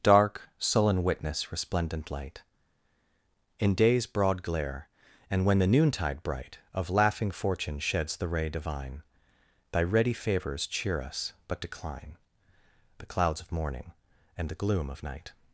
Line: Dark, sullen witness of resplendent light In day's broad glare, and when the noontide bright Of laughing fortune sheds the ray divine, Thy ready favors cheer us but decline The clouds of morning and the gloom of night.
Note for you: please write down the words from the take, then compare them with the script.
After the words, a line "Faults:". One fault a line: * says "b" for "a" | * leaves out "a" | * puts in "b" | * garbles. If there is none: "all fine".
Dark, sullen witness resplendent light In day's broad glare, and when the noontide bright Of laughing fortune sheds the ray divine, Thy ready favors cheer us but decline The clouds of morning and the gloom of night.
Faults:
* leaves out "of"